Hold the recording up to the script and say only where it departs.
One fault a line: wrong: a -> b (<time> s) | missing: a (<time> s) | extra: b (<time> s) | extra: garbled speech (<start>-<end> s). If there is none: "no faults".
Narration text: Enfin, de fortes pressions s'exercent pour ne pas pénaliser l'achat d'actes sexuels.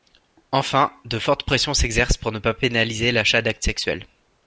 no faults